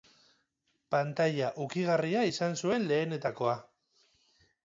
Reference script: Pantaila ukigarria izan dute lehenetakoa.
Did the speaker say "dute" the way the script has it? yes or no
no